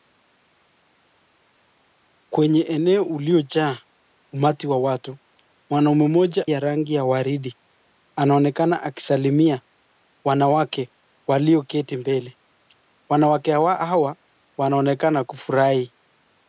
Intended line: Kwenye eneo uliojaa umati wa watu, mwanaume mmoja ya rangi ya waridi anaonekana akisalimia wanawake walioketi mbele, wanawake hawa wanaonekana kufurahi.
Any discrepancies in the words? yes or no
no